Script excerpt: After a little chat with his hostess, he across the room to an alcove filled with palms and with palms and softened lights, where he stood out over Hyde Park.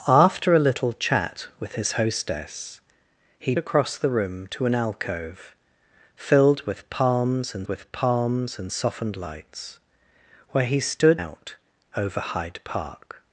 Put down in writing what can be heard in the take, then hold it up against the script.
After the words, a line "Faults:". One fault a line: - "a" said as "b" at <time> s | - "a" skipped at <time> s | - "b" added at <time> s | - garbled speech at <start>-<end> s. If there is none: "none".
After a little chat with his hostess, he across the room to an alcove filled with palms and with palms and softened lights, where he stood out over Hyde Park.
Faults:
none